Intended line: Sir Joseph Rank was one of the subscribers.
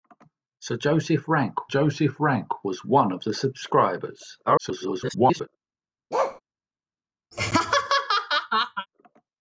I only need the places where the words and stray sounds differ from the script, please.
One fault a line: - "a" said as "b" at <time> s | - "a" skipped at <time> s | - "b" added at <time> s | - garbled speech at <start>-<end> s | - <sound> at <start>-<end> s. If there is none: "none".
- "Joseph Rank" added at 1.7 s
- garbled speech at 4.5-5.5 s
- bark at 6.1-6.4 s
- laugh at 7.3-8.9 s